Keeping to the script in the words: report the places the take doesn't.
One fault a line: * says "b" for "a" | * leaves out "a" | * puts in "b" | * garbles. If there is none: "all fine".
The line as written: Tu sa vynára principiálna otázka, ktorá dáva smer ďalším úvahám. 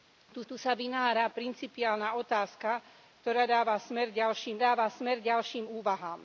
* puts in "tu"
* puts in "dáva smer ďalším"